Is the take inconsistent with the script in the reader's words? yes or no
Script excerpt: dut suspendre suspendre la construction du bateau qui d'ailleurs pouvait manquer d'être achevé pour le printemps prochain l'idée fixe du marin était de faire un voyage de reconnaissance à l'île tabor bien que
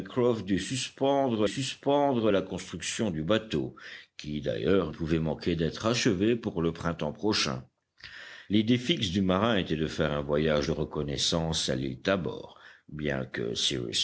no